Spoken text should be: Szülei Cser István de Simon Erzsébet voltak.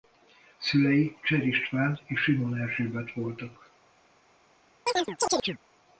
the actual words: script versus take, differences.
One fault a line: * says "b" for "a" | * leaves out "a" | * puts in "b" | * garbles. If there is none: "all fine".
* says "és" for "de"